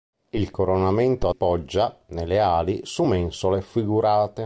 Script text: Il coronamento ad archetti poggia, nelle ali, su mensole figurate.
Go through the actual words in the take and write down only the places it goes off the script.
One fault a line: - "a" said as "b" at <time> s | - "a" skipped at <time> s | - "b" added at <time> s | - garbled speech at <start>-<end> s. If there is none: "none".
- "ad archetti" skipped at 1.3 s